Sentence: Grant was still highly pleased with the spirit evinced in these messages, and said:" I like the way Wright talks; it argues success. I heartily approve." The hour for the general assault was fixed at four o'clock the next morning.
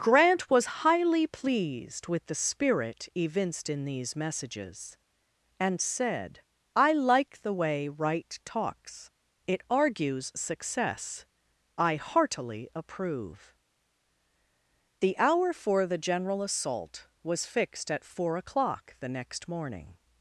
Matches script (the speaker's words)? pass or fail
fail